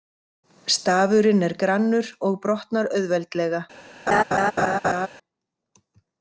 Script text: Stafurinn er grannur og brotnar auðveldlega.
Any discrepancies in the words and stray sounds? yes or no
yes